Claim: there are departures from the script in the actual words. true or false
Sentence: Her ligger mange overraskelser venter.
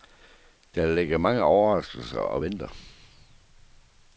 true